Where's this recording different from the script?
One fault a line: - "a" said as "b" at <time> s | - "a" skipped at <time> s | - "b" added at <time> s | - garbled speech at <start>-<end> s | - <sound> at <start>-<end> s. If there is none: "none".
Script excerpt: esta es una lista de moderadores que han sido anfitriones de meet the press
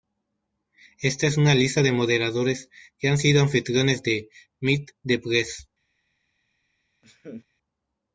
- laugh at 7.0-7.5 s